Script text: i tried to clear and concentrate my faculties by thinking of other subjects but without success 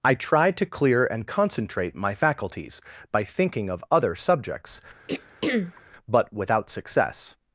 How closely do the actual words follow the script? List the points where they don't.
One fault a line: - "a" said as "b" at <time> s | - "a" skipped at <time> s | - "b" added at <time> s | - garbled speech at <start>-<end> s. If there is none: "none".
none